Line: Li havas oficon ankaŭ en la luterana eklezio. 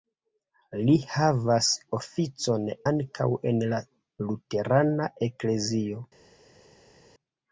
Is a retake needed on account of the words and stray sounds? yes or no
no